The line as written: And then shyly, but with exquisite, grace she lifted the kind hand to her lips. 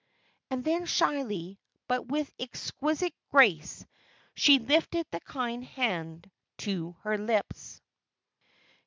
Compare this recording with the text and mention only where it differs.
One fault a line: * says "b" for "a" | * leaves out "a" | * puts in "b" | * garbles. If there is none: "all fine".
all fine